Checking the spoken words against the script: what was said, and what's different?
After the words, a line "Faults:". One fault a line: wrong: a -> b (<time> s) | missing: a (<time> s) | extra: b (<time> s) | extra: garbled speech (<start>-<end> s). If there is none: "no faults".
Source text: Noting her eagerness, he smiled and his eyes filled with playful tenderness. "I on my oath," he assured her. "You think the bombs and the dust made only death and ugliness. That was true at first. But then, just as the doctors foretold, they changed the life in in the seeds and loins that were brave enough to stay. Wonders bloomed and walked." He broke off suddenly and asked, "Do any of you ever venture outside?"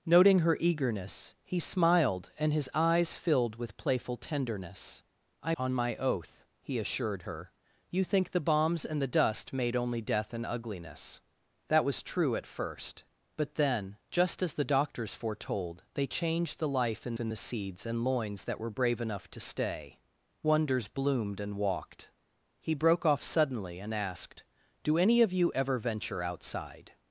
Noting her eagerness, he smiled and his eyes filled with playful tenderness. "I on my oath," he assured her. "You think the bombs and the dust made only death and ugliness. That was true at first. But then, just as the doctors foretold, they changed the life in in the seeds and loins that were brave enough to stay. Wonders bloomed and walked." He broke off suddenly and asked, "Do any of you ever venture outside?"
Faults:
no faults